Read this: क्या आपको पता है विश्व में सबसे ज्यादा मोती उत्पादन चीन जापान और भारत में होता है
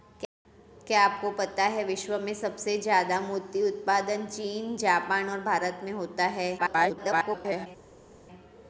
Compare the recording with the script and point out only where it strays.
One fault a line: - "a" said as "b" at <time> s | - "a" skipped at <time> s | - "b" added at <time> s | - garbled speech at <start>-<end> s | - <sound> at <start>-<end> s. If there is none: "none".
- garbled speech at 6.6-7.7 s